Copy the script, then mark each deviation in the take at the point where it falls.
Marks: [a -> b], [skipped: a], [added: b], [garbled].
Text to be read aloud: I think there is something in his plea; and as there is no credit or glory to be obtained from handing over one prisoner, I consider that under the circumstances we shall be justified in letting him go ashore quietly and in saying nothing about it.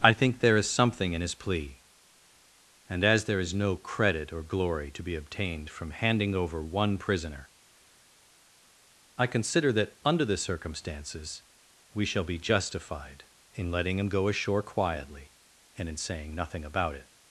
I think there is something in his plea; and as there is no credit or glory to be obtained from handing over one prisoner, I consider that under the circumstances we shall be justified in letting him go ashore quietly and in saying nothing about it.